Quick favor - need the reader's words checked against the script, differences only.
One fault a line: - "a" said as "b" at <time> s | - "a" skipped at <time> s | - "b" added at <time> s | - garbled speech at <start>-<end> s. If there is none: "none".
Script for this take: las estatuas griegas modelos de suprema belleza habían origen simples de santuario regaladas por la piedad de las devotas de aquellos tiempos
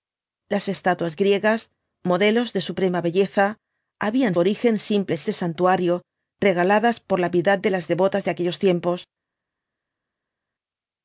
none